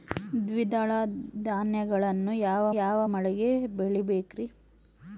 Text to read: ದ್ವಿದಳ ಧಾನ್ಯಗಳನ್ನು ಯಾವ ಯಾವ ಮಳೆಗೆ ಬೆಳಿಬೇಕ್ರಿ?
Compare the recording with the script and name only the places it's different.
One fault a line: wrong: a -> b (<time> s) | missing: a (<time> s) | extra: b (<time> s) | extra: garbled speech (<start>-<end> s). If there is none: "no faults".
no faults